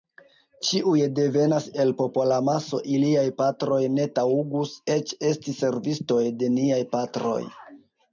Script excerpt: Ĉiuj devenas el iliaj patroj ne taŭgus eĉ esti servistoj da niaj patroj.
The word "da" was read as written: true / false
false